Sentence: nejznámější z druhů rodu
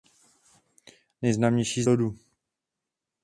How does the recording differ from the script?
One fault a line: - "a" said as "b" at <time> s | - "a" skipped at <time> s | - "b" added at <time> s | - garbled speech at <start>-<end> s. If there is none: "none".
- "druhů" skipped at 1.9 s